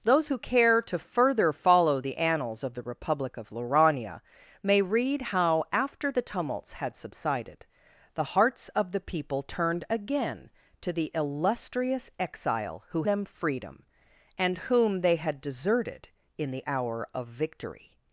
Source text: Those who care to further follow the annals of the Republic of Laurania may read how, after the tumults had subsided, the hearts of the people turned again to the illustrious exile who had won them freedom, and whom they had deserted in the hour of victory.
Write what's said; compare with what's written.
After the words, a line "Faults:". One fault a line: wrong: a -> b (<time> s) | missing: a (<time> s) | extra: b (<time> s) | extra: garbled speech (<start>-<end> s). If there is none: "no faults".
Those who care to further follow the annals of the Republic of Laurania may read how, after the tumults had subsided, the hearts of the people turned again to the illustrious exile who them freedom, and whom they had deserted in the hour of victory.
Faults:
missing: had won (13.0 s)